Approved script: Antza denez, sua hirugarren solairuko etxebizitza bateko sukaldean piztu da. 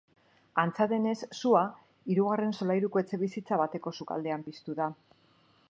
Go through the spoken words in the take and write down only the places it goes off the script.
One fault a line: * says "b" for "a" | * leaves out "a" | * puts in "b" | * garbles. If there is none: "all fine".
all fine